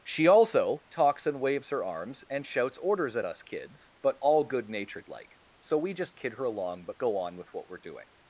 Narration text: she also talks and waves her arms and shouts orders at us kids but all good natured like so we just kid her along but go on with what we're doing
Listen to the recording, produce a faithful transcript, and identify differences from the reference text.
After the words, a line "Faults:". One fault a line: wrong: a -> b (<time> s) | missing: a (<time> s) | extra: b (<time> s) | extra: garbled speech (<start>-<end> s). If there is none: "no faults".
she also talks and waves her arms and shouts orders at us kids but all good natured like so we just kid her along but go on with what we're doing
Faults:
no faults